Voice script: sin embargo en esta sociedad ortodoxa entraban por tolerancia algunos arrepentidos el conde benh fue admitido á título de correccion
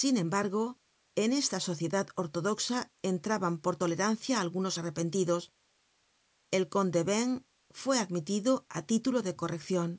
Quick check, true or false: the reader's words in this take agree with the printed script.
true